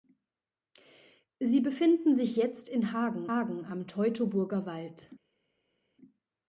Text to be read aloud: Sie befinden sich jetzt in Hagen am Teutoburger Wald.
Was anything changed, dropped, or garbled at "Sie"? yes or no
no